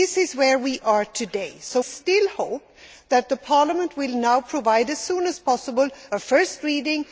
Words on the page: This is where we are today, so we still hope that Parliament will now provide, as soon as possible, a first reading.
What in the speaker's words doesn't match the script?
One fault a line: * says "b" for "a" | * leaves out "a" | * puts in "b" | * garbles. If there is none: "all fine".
* leaves out "we"